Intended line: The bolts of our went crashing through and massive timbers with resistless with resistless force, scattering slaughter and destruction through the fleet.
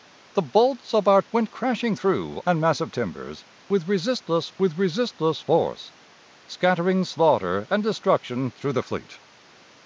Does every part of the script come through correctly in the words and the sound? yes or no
yes